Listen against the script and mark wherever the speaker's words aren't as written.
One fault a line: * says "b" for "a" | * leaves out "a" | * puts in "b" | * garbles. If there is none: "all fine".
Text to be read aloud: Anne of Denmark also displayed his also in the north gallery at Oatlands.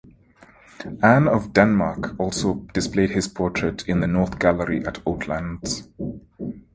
* says "portrait" for "also"